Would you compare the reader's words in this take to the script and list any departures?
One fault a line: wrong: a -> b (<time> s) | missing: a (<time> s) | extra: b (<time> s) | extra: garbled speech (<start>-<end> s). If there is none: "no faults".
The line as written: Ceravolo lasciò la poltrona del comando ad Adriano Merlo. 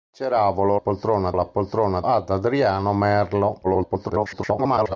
wrong: lasciò -> poltrona (0.8 s)
missing: del comando (2.0 s)
extra: garbled speech (3.6-5.0 s)